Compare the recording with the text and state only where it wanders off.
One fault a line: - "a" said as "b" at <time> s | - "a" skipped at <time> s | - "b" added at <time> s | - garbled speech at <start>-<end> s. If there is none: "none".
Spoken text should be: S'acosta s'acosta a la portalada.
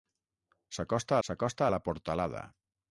none